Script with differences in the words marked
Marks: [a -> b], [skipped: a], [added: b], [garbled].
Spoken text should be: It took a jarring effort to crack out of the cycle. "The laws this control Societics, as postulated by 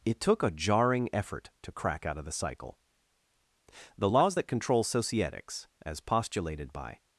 It took a jarring effort to crack out of the cycle. "The laws [this -> that] control Societics, as postulated by